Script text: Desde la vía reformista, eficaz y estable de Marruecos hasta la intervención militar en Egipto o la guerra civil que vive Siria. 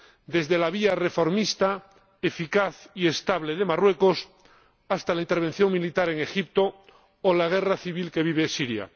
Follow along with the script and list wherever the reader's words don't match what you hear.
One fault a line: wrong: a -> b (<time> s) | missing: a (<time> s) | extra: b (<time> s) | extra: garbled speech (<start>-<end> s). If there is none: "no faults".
no faults